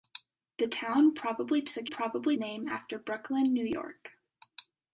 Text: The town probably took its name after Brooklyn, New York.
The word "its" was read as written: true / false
false